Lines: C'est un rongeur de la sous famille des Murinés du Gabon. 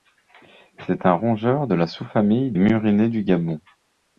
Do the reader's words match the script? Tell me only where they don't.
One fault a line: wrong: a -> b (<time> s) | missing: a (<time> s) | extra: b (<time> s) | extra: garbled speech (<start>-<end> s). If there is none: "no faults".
missing: des (2.5 s)